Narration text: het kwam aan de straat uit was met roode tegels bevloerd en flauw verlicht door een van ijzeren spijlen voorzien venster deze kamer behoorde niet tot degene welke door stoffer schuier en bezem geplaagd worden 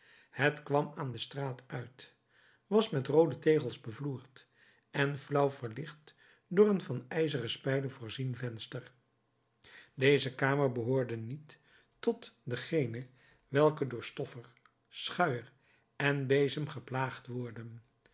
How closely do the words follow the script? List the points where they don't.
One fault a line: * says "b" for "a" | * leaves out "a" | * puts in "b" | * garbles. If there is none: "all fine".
all fine